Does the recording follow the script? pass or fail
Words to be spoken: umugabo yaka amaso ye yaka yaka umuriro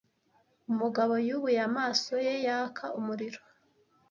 fail